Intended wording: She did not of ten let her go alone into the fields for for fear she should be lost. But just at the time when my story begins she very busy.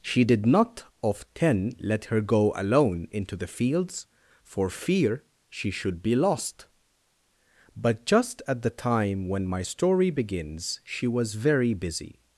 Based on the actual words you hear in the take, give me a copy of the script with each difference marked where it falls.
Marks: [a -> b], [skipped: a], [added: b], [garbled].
She did not of ten let her go alone into the fields for [skipped: for] fear she should be lost. But just at the time when my story begins she [added: was] very busy.